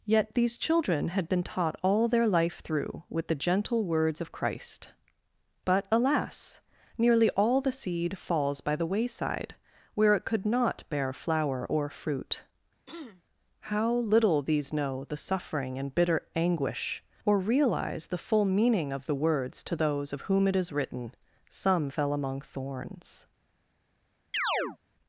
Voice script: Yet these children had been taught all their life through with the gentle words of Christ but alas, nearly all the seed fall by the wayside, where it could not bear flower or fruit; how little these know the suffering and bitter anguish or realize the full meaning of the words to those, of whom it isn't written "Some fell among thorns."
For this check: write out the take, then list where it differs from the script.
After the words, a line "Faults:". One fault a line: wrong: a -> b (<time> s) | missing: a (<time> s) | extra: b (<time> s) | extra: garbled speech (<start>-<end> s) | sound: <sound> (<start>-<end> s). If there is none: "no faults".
Yet these children had been taught all their life through with the gentle words of Christ but alas, nearly all the seed falls by the wayside, where it could not bear flower or fruit; how little these know the suffering and bitter anguish or realize the full meaning of the words to those, of whom it is written "Some fell among thorns."
Faults:
wrong: fall -> falls (8.2 s)
sound: throat clearing (12.9-13.2 s)
wrong: isn't -> is (20.5 s)
sound: chirp (24.3-24.8 s)